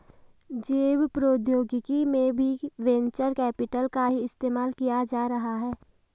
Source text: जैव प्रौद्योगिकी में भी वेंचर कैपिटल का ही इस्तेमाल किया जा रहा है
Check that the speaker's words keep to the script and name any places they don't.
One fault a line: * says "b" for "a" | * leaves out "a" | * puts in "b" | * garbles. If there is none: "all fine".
all fine